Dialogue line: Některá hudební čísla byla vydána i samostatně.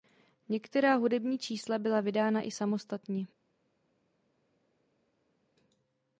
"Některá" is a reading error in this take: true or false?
false